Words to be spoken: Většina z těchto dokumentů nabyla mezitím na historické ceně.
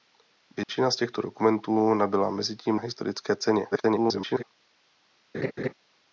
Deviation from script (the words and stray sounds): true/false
true